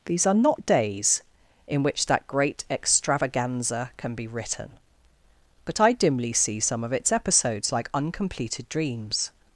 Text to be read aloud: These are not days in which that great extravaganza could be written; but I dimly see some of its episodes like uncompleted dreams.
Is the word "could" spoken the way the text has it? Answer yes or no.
no